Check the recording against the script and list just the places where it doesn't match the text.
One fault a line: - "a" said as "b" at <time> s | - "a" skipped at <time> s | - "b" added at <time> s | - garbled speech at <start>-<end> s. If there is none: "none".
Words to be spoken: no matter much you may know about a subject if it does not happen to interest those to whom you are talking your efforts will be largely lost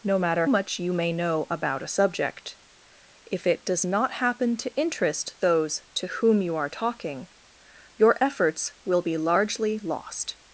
none